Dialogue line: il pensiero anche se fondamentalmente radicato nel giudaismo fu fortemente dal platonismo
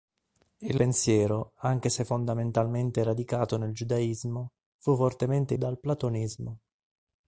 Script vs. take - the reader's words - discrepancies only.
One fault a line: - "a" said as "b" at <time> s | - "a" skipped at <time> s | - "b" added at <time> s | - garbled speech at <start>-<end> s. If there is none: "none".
none